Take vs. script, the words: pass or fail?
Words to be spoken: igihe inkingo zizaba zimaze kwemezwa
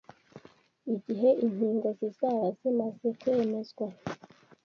pass